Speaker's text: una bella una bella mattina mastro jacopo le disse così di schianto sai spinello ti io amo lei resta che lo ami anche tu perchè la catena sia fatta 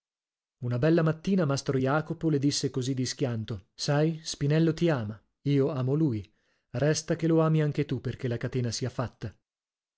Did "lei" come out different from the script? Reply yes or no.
yes